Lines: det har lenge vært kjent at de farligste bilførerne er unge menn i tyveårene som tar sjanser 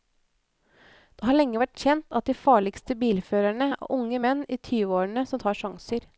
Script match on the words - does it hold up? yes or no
yes